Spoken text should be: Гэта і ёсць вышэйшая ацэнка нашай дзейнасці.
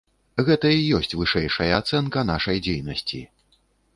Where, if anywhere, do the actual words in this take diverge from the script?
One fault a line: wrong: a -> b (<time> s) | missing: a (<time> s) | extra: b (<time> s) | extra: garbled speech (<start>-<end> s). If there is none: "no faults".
no faults